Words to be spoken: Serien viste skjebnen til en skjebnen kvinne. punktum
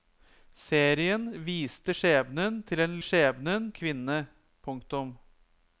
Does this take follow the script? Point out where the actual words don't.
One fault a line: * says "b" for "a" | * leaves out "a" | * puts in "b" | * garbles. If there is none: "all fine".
all fine